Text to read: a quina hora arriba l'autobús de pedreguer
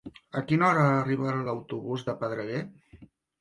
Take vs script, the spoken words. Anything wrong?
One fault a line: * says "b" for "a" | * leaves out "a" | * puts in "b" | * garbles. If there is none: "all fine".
all fine